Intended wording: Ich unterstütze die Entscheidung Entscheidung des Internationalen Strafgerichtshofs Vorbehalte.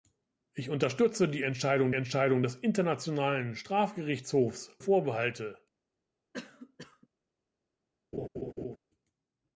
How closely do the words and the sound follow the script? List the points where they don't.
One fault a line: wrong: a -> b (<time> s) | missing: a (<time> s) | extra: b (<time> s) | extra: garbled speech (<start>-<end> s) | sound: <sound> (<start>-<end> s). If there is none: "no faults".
sound: cough (6.3-7.1 s)
sound: laugh (8.1-8.8 s)